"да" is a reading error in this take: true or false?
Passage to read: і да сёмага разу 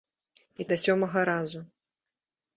false